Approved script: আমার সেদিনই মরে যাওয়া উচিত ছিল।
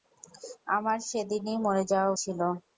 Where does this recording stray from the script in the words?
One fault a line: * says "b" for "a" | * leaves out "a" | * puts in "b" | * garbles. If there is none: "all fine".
* leaves out "উচিত"